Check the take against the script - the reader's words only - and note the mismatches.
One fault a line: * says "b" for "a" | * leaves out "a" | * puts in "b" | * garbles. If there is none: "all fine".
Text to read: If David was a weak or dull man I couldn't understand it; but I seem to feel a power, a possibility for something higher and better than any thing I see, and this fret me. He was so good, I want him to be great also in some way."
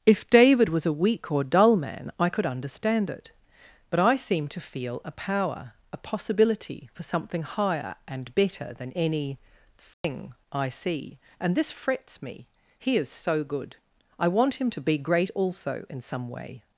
* says "could" for "couldn't"
* says "frets" for "fret"
* says "is" for "was"